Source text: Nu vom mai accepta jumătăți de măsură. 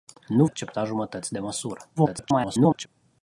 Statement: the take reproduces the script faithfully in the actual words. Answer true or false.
false